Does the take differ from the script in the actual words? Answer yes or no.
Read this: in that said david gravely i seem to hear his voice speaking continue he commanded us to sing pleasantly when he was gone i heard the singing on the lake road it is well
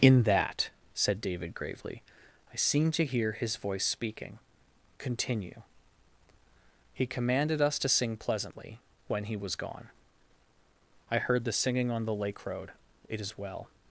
no